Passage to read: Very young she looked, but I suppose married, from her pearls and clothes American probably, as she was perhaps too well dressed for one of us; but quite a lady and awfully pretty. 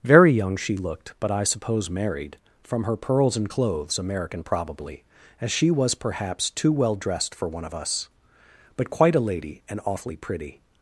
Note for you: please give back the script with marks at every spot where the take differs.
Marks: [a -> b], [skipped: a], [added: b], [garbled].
Very young she looked, but I suppose married, from her pearls and clothes American probably, as she was perhaps too well dressed for one of us; but quite a lady and awfully pretty.